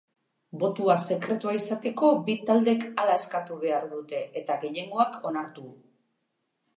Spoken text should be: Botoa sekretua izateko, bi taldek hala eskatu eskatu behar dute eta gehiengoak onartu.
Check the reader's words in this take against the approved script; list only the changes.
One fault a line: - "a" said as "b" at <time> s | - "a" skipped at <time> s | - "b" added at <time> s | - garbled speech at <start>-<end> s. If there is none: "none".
- "eskatu" skipped at 3.6 s